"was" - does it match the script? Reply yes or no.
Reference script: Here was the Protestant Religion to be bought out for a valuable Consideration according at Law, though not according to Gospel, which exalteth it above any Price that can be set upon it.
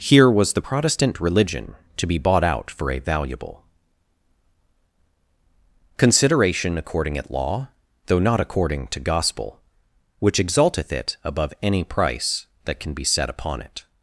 yes